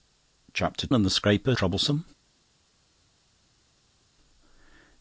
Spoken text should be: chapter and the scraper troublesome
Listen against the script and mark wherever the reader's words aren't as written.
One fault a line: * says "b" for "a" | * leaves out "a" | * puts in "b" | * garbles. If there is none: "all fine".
all fine